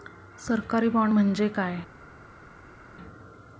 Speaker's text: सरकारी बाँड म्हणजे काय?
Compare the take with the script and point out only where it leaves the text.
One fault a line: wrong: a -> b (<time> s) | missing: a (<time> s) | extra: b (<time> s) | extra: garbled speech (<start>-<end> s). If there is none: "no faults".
no faults